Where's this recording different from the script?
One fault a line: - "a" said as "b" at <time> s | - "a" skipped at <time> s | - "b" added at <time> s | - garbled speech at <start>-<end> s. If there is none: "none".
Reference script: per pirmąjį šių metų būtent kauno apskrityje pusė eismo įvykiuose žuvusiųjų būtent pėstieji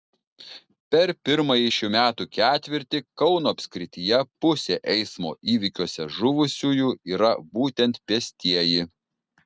- "būtent" said as "ketvirtį" at 2.4 s
- "yra" added at 7.2 s